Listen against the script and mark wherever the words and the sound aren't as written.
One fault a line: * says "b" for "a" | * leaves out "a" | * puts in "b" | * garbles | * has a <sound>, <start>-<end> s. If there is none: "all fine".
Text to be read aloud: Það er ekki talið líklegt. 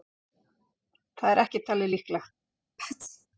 * has a sneeze, 2.8-3.3 s